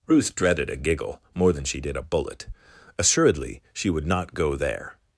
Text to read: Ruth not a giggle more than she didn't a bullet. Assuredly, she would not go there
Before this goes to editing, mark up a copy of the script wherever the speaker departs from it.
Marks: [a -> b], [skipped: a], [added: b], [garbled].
Ruth [not -> dreaded] a giggle more than she [didn't -> did] a bullet. Assuredly, she would not go there